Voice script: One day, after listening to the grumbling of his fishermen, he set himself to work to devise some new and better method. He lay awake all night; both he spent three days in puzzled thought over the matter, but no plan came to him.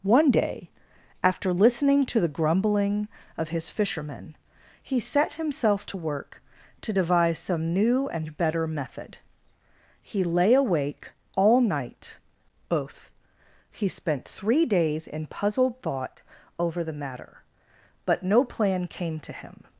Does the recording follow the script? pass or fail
pass